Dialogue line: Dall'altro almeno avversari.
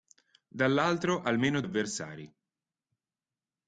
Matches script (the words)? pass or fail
pass